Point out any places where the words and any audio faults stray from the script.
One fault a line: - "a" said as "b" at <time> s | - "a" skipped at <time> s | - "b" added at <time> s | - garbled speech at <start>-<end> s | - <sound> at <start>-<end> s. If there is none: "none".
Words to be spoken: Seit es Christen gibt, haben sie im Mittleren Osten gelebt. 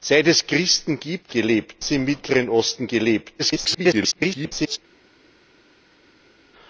- "haben" said as "gelebt" at 1.3 s
- garbled speech at 3.4-4.8 s